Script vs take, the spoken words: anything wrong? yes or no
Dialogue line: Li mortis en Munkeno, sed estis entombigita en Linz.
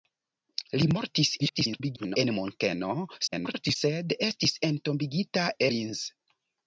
yes